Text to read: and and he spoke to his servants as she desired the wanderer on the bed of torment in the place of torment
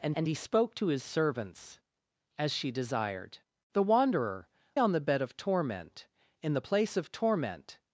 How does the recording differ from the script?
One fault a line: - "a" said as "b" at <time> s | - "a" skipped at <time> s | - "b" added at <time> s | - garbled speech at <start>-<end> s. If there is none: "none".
none